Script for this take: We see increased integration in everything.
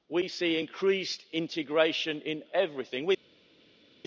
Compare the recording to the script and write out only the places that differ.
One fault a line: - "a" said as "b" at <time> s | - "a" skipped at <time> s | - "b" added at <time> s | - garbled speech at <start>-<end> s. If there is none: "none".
none